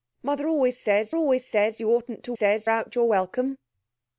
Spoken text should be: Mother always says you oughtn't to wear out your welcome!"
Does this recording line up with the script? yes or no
no